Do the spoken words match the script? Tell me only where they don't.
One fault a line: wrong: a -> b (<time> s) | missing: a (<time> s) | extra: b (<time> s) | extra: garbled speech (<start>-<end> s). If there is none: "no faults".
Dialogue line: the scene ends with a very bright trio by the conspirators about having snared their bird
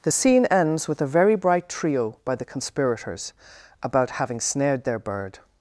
no faults